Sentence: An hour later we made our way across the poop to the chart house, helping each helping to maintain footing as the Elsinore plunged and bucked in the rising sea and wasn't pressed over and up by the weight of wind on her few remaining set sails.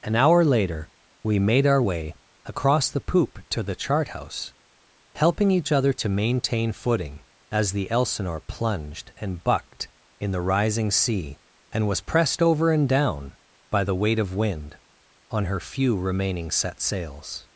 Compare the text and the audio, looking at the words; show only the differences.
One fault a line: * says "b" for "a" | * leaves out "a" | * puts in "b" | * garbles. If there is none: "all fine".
* says "other" for "helping"
* says "was" for "wasn't"
* says "down" for "up"